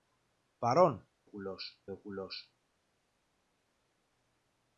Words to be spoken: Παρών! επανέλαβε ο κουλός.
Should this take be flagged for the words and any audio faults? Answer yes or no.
yes